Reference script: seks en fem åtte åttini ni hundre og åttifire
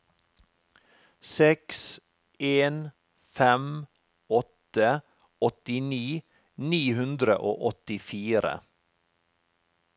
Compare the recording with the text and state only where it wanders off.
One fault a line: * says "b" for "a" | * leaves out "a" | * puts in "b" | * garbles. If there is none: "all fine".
all fine